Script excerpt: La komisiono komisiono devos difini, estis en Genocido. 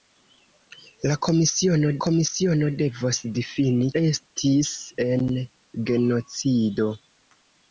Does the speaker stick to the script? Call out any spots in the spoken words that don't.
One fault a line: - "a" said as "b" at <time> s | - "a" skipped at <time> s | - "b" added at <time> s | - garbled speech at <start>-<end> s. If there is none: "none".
none